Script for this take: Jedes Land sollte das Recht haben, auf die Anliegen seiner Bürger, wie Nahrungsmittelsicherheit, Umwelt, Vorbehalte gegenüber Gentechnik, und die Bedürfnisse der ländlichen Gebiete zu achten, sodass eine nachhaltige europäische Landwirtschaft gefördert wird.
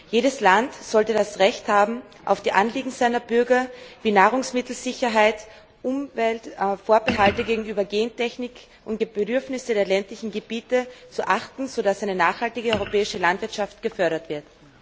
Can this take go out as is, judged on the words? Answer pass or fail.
pass